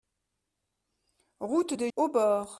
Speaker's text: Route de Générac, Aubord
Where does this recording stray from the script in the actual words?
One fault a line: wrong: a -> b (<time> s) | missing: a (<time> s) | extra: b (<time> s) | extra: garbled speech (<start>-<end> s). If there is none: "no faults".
missing: Générac (1.9 s)